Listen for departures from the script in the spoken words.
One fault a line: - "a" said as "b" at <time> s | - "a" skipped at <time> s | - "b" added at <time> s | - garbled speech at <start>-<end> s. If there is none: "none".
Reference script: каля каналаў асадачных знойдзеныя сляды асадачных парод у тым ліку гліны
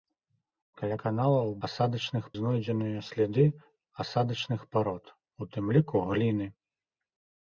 none